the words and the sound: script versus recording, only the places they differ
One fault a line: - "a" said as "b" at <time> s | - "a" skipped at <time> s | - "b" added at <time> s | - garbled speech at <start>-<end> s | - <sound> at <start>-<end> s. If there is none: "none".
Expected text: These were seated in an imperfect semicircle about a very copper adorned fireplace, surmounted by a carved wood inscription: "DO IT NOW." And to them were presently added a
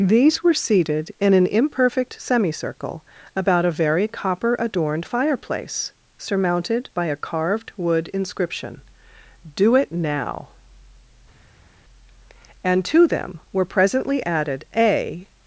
none